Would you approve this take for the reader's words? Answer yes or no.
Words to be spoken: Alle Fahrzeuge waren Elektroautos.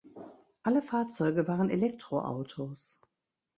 yes